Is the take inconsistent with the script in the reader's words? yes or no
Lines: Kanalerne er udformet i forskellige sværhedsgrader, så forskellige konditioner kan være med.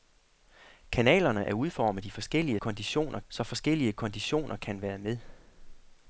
yes